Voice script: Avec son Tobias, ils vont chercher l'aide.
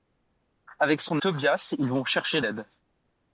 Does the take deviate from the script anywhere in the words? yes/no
no